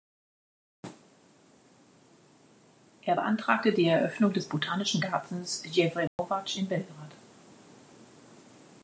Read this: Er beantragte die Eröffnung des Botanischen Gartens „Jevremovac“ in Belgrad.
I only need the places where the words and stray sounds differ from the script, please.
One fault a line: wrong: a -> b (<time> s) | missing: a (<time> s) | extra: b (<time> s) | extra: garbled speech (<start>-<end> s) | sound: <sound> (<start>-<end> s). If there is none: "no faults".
sound: dropout (6.1-6.2 s)